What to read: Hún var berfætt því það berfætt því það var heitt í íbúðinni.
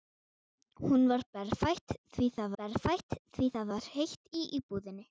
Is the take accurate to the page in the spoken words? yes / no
yes